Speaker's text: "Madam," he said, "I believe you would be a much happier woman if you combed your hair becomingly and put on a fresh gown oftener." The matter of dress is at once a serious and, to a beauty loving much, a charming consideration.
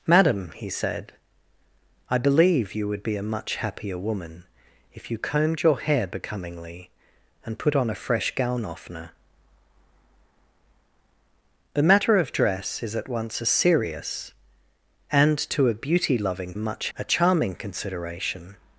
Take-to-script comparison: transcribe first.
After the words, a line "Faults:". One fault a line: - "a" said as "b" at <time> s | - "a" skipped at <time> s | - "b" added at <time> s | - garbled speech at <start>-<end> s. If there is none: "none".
"Madam," he said, "I believe you would be a much happier woman if you combed your hair becomingly and put on a fresh gown oftener." The matter of dress is at once a serious and, to a beauty loving much, a charming consideration.
Faults:
none